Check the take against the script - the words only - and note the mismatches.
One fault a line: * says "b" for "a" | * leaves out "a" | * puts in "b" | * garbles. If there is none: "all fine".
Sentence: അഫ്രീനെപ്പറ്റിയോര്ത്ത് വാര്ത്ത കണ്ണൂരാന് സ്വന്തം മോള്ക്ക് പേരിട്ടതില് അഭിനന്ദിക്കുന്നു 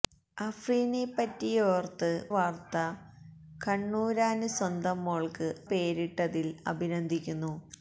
all fine